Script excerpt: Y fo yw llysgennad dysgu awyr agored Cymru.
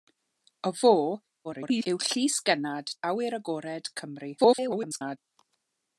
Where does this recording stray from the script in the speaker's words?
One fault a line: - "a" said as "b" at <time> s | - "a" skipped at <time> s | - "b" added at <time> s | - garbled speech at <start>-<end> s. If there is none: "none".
- garbled speech at 1.4-1.9 s
- "dysgu" skipped at 2.9 s
- garbled speech at 4.4-5.2 s